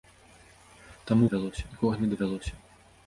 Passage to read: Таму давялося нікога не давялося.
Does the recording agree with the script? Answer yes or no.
yes